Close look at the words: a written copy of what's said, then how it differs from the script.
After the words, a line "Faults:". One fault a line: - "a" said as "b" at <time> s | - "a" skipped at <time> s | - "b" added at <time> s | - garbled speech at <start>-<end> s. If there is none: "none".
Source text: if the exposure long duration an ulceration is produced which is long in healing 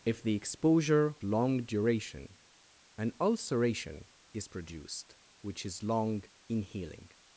if the exposure long duration an ulceration is produced which is long in healing
Faults:
none